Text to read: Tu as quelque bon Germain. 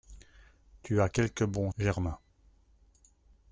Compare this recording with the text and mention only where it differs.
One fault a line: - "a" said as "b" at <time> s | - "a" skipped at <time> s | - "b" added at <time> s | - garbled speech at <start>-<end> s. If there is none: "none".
none